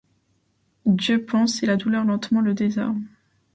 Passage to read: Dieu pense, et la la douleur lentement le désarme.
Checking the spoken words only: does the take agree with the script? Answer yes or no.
no